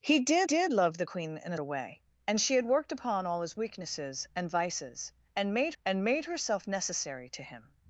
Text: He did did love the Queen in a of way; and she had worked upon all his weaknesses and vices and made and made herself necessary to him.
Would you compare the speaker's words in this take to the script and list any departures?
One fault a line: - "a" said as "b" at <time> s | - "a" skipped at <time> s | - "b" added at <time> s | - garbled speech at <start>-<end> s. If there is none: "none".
none